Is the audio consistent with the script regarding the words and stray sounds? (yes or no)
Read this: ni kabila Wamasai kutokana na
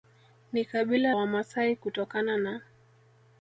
yes